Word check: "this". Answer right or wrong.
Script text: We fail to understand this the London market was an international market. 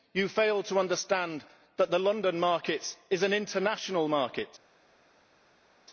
wrong